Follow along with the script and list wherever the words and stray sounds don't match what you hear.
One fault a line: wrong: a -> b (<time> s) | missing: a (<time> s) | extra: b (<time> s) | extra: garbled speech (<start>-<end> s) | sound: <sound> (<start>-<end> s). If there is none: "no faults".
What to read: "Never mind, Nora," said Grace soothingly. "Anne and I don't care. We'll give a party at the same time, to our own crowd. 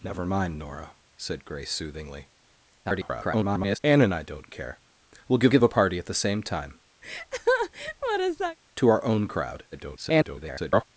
extra: garbled speech (2.8-3.8 s)
extra: give (5.5 s)
sound: laugh (7.0-8.6 s)
extra: garbled speech (9.7-10.8 s)